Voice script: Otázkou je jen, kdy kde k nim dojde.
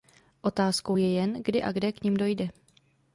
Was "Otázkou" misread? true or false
false